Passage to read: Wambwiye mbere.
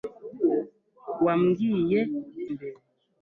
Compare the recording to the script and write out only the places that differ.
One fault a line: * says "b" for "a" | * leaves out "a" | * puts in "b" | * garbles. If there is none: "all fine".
all fine